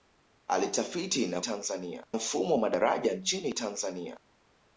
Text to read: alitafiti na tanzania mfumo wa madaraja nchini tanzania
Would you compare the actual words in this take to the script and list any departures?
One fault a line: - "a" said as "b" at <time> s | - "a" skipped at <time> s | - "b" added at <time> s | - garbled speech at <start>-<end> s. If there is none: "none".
none